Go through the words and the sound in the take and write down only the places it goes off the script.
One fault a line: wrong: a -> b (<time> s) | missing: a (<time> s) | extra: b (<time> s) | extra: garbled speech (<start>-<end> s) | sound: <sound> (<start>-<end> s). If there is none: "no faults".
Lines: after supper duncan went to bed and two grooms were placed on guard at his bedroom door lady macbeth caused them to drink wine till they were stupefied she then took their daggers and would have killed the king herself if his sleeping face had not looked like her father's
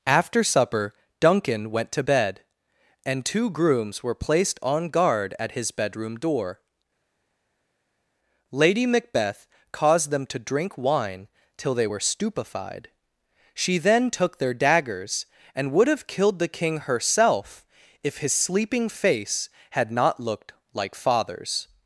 missing: her (21.0 s)